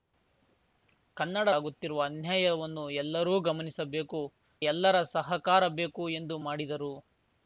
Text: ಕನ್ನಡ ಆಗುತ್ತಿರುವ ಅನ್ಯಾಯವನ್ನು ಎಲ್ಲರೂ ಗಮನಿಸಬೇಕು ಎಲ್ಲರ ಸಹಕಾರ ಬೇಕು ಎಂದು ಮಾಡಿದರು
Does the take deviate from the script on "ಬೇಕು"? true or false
false